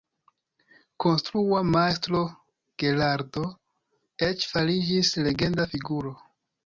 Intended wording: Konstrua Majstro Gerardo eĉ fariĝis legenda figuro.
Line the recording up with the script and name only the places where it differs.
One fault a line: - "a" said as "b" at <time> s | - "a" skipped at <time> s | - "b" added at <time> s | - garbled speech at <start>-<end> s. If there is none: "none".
none